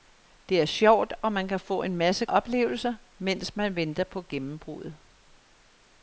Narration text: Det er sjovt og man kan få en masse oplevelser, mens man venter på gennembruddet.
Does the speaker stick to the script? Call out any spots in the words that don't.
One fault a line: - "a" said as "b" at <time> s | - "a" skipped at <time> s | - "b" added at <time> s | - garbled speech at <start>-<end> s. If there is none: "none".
none